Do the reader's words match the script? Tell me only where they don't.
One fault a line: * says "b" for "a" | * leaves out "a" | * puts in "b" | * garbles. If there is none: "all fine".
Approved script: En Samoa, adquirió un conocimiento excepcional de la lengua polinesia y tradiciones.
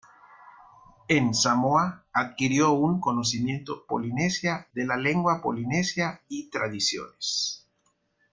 * says "polinesia" for "excepcional"